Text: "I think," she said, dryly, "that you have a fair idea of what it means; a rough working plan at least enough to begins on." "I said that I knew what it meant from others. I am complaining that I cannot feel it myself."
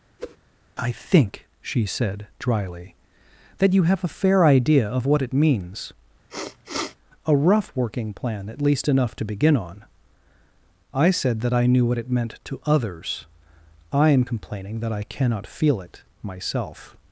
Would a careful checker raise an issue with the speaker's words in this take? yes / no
yes